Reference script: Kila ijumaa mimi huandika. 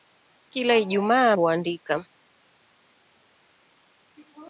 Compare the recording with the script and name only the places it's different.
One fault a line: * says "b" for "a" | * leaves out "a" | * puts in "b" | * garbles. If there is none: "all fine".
* leaves out "mimi"